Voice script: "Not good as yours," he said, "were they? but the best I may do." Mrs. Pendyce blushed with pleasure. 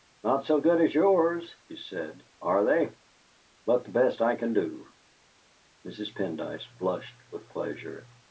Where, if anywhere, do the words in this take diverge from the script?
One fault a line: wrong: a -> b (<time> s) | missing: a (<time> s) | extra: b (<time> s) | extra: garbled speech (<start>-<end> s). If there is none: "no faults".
extra: so (0.5 s)
wrong: were -> are (2.4 s)
wrong: may -> can (4.4 s)